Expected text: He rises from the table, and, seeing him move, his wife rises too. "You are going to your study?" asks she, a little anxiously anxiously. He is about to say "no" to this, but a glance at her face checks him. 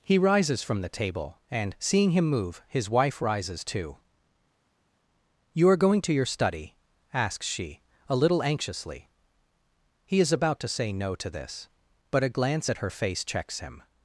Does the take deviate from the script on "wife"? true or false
false